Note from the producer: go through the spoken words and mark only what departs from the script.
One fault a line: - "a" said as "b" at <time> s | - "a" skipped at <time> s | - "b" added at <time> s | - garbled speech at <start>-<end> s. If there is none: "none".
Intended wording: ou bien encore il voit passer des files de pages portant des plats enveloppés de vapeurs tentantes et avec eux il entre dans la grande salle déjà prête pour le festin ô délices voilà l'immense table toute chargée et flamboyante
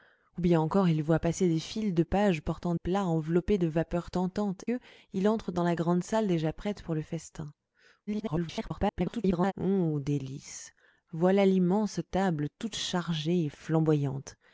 - "des" skipped at 2.7 s
- "et avec" skipped at 4.6 s
- garbled speech at 8.1-9.5 s